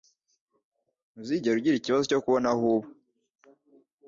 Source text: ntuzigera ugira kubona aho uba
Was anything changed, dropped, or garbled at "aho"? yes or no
no